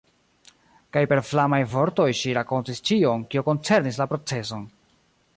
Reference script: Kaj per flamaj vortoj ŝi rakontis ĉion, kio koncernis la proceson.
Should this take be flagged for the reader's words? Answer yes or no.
no